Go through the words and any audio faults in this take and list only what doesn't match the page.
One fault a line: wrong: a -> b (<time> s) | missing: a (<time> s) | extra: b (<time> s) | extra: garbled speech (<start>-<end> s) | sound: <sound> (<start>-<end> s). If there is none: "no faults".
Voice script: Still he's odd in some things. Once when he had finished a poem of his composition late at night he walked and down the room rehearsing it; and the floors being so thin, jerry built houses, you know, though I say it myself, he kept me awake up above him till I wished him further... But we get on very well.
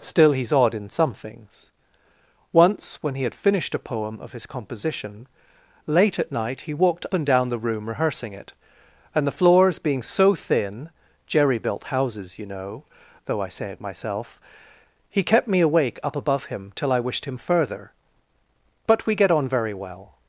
no faults